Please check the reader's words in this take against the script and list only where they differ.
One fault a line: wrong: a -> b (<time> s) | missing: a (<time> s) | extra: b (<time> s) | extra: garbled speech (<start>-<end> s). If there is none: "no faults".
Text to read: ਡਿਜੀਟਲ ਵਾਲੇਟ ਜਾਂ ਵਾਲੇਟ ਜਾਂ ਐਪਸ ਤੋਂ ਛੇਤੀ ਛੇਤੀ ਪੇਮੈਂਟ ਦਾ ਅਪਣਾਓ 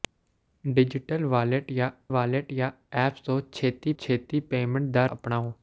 no faults